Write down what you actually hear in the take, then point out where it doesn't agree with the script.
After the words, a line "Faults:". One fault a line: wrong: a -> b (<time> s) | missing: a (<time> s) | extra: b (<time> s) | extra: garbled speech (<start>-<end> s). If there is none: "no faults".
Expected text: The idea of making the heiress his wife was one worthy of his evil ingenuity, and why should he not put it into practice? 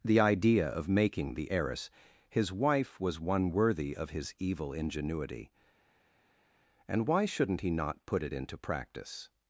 The idea of making the heiress his wife was one worthy of his evil ingenuity, and why shouldn't he not put it into practice?
Faults:
wrong: should -> shouldn't (7.2 s)